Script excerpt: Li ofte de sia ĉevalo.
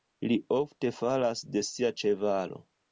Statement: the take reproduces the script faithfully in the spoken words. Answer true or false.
false